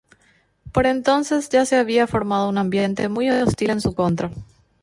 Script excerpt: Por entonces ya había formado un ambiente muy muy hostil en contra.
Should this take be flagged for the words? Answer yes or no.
yes